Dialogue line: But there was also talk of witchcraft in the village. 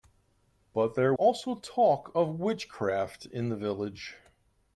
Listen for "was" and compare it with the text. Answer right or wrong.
wrong